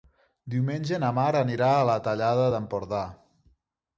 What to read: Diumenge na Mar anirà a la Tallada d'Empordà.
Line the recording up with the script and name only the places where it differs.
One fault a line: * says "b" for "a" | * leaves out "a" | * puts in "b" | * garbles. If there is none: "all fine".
all fine